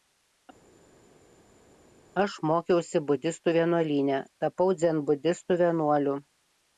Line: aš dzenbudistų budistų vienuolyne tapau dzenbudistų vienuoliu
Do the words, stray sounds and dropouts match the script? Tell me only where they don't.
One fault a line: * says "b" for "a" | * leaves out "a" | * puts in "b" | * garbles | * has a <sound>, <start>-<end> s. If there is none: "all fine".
* says "mokiausi" for "dzenbudistų"